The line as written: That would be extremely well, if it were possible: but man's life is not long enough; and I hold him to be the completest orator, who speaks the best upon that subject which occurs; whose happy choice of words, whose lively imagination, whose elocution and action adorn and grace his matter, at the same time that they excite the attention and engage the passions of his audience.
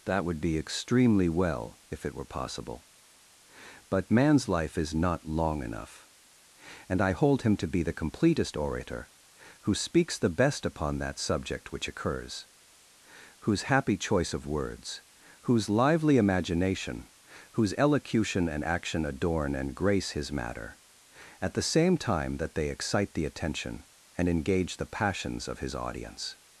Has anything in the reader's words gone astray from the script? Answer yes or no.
no